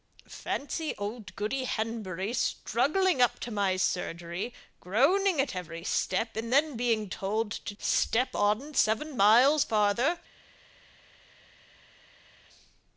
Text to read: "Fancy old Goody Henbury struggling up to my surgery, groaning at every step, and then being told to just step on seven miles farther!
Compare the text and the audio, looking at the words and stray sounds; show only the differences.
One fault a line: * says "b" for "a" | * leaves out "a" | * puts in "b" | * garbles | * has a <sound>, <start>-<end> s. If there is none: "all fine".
* leaves out "just"